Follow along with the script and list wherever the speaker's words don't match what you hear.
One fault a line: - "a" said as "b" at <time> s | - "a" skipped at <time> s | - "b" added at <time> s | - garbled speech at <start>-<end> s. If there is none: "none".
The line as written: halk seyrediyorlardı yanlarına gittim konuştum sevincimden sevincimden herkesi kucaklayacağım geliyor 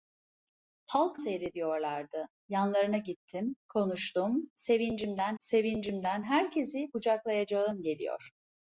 none